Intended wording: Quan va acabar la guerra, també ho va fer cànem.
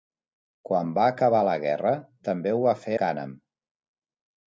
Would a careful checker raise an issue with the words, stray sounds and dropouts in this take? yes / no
no